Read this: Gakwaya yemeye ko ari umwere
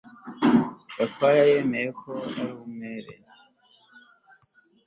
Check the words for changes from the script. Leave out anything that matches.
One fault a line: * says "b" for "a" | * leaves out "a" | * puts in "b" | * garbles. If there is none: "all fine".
all fine